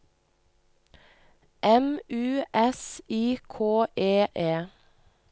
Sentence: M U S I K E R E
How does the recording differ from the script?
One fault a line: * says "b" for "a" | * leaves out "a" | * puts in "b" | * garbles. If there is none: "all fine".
* leaves out "R"